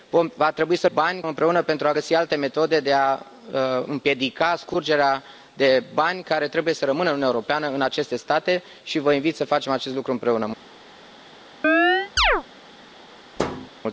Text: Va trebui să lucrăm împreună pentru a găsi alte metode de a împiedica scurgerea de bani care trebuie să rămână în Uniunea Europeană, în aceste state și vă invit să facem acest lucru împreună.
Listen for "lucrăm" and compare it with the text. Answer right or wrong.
wrong